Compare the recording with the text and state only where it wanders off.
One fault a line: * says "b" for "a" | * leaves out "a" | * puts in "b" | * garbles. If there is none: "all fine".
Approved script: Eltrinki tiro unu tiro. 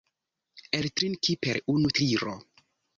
* says "per" for "tiro"